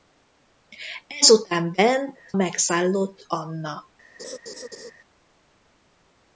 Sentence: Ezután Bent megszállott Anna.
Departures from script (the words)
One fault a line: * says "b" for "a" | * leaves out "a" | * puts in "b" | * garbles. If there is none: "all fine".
all fine